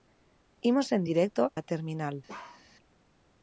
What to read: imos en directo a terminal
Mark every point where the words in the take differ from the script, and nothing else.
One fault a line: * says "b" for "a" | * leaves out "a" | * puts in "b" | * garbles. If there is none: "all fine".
all fine